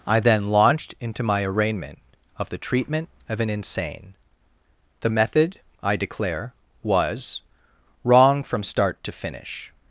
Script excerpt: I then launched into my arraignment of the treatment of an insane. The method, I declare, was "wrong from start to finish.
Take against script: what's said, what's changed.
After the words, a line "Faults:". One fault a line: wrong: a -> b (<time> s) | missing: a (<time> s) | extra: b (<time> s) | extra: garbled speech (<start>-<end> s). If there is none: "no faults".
I then launched into my arraignment of the treatment of an insane. The method, I declare, was "wrong from start to finish.
Faults:
no faults